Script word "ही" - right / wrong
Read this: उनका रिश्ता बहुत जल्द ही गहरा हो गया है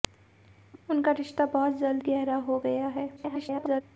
wrong